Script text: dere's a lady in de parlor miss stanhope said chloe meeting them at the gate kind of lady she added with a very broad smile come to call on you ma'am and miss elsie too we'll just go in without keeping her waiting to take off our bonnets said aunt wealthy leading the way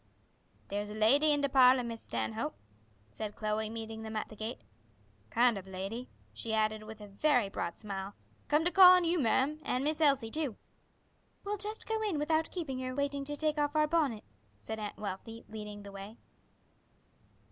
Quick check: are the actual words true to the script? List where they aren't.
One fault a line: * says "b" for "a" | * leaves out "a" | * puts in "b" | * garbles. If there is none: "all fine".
all fine